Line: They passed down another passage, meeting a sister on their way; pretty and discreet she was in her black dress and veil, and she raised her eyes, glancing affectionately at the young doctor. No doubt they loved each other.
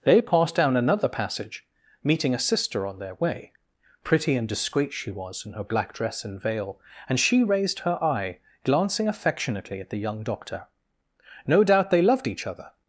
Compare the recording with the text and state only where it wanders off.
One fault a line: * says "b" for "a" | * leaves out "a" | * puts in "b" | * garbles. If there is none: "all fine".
* says "eye" for "eyes"